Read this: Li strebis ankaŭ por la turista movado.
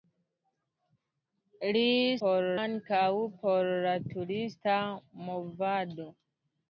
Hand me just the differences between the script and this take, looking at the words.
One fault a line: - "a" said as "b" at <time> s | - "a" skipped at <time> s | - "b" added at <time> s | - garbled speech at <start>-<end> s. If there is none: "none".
- "strebis" said as "por" at 2.2 s